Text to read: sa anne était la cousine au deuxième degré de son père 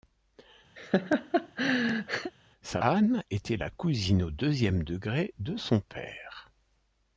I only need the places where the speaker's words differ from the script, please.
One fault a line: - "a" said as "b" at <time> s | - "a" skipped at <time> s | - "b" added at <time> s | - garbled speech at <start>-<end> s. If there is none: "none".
none